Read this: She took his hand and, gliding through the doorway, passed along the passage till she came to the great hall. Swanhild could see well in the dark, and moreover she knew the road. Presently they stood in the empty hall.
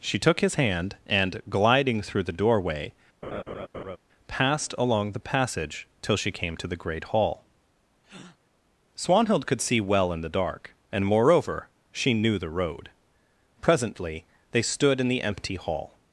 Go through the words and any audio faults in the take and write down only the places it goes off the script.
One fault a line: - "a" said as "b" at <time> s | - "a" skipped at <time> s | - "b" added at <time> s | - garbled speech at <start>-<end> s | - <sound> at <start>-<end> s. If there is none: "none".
- laugh at 3.2-4.0 s
- breath at 8.0-8.4 s